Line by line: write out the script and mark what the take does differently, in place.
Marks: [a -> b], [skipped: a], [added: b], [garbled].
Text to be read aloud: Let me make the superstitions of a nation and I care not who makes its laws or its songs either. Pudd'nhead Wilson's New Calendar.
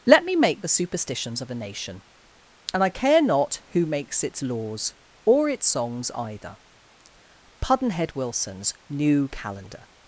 Let me make the superstitions of a nation and I care not who makes its laws or its songs either. Pudd'nhead Wilson's New Calendar.